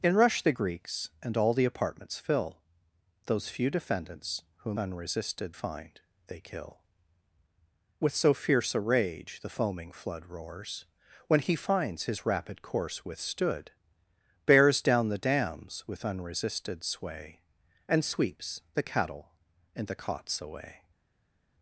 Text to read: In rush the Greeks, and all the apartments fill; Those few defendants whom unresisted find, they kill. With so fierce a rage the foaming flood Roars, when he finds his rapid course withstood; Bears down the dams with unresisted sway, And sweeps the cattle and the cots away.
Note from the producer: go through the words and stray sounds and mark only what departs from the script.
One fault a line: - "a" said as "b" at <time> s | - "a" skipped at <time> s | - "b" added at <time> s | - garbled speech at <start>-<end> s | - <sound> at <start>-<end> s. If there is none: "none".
none